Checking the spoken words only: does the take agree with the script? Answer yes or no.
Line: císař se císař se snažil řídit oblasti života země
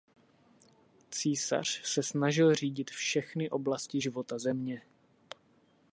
no